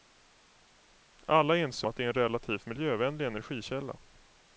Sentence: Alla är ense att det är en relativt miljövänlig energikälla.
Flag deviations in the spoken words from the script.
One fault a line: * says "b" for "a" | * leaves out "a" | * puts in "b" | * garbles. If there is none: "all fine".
all fine